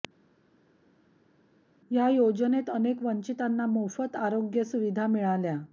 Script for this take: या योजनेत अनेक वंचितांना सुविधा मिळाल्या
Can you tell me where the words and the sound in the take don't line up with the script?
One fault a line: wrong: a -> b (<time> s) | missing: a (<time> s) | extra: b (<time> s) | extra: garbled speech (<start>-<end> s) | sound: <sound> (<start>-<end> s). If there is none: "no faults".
extra: मोफत आरोग्य (3.7 s)